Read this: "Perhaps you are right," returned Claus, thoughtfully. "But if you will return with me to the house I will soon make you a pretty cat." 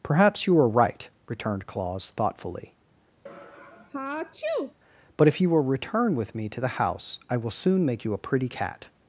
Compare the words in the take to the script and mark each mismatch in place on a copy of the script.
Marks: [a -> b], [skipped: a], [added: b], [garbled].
"Perhaps you are right," returned Claus, thoughtfully. "But if you will return with me to the house I will soon make you a pretty cat."